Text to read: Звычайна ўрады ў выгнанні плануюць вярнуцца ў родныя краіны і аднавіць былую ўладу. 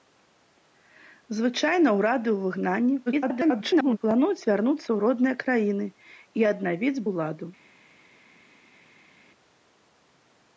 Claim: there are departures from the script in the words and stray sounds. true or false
true